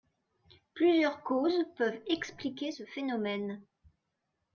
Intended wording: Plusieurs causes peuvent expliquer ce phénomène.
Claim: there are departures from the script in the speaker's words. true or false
false